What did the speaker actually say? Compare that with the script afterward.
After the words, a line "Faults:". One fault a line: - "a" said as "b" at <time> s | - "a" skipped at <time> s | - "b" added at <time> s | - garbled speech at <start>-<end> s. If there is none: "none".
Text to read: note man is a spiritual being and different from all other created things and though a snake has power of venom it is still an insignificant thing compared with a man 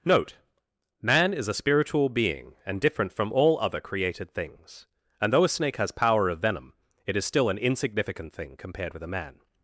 note man is a spiritual being and different from all other created things and though a snake has power of venom it is still an insignificant thing compared with a man
Faults:
none